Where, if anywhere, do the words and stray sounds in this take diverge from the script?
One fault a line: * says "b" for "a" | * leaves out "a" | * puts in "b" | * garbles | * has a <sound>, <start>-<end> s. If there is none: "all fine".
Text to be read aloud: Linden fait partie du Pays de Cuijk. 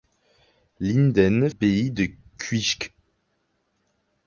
* leaves out "fait partie du"